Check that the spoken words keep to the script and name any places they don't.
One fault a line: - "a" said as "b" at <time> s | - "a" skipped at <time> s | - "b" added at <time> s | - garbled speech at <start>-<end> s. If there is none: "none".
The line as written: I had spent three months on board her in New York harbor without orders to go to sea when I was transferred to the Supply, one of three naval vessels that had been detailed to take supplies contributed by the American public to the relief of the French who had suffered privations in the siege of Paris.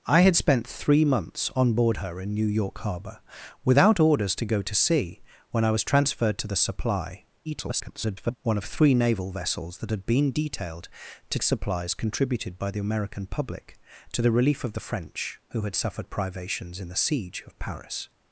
- garbled speech at 7.5-8.4 s
- "take" skipped at 11.4 s